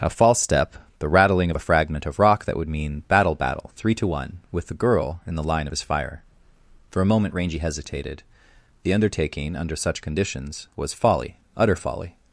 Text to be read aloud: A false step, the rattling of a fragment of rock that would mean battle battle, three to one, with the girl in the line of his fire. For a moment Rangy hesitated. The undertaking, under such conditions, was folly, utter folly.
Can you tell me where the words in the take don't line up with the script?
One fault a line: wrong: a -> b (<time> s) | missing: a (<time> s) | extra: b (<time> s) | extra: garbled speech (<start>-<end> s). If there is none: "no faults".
no faults